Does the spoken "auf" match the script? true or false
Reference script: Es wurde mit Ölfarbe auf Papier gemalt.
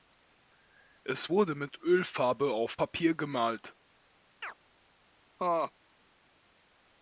true